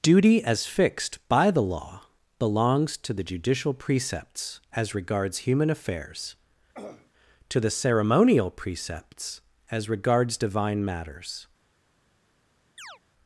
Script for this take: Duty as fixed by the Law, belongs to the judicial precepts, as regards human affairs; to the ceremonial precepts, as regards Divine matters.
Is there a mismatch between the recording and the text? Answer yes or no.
no